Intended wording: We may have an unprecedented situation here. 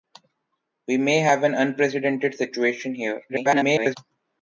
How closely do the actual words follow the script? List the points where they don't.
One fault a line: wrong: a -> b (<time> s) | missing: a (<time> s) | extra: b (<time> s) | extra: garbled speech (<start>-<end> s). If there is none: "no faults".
extra: garbled speech (3.3-4.0 s)